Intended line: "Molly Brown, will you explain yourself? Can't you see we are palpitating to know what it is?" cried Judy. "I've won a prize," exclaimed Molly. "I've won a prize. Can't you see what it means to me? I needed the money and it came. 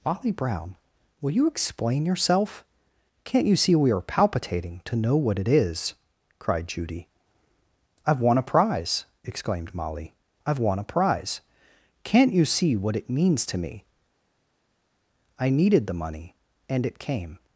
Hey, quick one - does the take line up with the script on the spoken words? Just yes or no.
yes